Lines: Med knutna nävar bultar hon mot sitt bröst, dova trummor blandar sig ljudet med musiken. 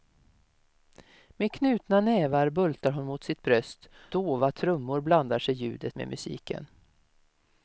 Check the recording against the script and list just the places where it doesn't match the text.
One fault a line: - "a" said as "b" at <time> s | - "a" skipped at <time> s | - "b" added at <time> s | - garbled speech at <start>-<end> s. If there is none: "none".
none